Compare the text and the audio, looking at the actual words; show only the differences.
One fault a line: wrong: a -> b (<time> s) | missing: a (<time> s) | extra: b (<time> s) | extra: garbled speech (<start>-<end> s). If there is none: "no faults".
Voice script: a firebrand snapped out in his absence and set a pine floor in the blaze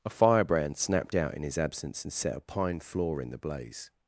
no faults